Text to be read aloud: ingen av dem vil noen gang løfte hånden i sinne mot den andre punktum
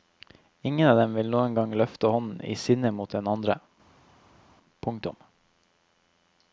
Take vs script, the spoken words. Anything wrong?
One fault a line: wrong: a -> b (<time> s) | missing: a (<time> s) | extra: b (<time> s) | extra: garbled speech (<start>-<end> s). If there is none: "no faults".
no faults